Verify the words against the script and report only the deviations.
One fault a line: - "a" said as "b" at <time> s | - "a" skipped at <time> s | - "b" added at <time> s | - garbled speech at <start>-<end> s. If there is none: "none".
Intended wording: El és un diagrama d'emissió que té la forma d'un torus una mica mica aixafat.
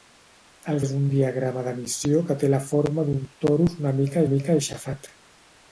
none